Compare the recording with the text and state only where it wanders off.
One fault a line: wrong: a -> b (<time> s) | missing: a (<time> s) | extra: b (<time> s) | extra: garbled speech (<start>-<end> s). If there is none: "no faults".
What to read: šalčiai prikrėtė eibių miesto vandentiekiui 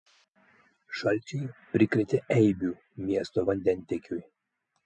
no faults